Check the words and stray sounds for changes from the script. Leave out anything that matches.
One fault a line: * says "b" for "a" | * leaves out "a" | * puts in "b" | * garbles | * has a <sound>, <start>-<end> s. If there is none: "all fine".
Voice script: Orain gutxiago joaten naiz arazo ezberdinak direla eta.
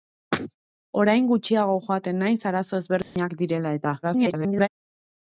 * has a dropout, 3.0-3.2 s
* garbles